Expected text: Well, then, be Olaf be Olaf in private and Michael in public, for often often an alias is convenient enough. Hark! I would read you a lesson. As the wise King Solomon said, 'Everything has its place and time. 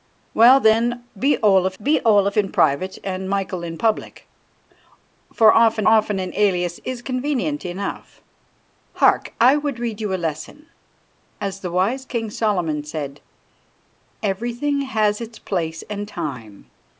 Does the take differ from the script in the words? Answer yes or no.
no